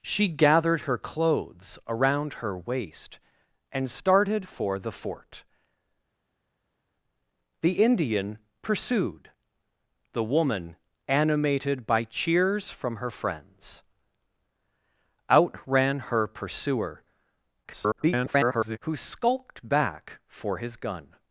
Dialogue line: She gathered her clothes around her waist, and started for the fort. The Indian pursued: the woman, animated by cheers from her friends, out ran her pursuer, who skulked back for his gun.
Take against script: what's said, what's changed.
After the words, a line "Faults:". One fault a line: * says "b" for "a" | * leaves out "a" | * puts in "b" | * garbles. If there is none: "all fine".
She gathered her clothes around her waist, and started for the fort. The Indian pursued: the woman, animated by cheers from her friends, out ran her pursuer, [garbled] who skulked back for his gun.
Faults:
* garbles